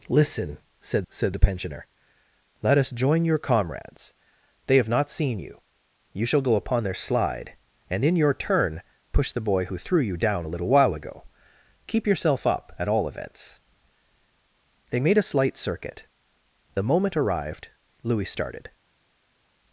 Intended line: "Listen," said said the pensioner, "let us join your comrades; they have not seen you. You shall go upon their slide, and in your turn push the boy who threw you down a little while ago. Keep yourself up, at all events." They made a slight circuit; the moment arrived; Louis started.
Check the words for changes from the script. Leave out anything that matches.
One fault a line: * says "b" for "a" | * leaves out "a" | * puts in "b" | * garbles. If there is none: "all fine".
all fine